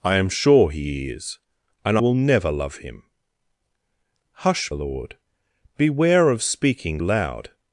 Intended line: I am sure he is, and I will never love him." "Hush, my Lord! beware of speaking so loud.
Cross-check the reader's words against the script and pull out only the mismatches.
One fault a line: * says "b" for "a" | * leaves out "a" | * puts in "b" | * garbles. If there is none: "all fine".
* leaves out "I"
* leaves out "my"
* leaves out "so"